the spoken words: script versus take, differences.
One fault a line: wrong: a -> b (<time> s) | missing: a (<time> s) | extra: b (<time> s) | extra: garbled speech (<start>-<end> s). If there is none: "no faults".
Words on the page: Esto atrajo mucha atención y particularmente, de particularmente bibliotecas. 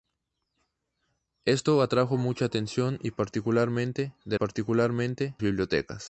no faults